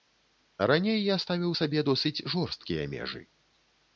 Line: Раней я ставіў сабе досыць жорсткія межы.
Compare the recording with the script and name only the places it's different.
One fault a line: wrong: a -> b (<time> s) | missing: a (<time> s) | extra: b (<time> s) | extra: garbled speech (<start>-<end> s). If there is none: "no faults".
no faults